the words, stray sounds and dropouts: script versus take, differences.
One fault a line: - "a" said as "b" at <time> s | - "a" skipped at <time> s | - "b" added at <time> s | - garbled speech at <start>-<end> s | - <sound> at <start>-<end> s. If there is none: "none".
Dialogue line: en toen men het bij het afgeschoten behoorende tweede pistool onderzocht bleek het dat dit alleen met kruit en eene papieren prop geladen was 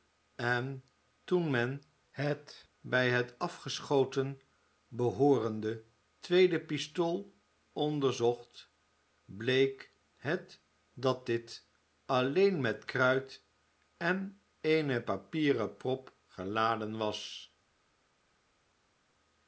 none